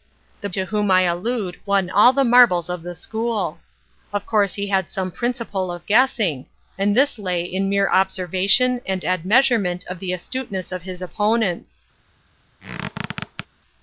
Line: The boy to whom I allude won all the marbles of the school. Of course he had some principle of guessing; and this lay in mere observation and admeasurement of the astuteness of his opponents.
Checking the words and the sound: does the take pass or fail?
fail